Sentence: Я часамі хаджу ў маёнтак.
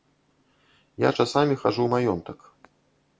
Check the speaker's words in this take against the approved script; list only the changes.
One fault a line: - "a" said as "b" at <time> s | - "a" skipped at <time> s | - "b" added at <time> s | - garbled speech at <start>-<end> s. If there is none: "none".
none